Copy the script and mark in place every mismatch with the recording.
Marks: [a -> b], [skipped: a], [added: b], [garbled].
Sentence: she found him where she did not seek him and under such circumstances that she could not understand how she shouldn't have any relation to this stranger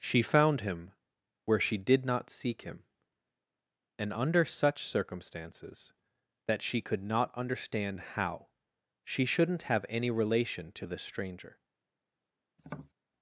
she found him where she did not seek him and under such circumstances that she could not understand how she shouldn't have any relation to this stranger